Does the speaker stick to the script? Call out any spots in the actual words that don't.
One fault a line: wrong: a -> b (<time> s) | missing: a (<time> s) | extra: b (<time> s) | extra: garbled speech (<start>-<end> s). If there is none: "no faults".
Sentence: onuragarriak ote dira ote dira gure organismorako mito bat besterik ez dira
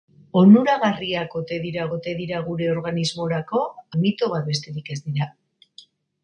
no faults